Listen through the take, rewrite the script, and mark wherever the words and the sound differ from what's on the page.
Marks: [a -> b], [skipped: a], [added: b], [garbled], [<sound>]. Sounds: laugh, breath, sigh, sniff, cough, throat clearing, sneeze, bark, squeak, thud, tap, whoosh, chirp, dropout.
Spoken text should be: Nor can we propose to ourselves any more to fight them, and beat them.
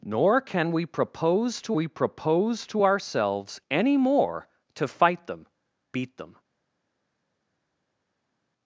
Nor can we propose to [added: we propose to] ourselves any more to fight them, [skipped: and] beat them.